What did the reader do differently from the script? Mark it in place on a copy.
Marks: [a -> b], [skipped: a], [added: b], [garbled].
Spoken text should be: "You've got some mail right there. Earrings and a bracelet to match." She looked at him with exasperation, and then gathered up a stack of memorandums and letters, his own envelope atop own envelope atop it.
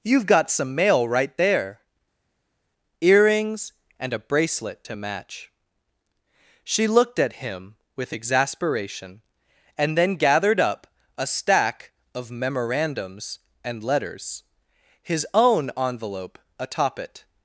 "You've got some mail right there. Earrings and a bracelet to match." She looked at him with exasperation, and then gathered up a stack of memorandums and letters, his own envelope atop [skipped: own envelope atop] it.